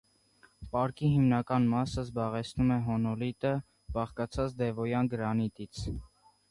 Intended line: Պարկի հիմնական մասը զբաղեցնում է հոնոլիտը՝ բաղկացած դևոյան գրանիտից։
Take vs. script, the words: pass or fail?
pass